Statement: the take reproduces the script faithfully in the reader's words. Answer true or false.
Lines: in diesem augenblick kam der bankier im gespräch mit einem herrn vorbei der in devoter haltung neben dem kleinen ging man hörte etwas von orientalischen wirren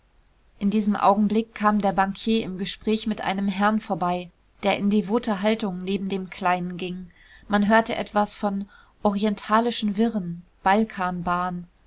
true